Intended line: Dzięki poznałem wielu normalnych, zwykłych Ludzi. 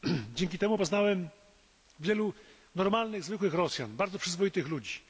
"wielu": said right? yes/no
yes